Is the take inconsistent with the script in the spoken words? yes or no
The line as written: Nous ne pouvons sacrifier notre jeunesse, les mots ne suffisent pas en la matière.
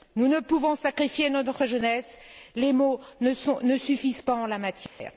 no